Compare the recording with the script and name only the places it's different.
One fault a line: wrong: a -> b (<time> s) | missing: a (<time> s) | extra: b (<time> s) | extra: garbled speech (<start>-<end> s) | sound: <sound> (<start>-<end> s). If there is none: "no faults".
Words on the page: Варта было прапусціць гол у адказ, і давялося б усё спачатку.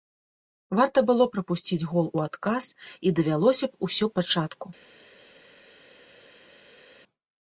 no faults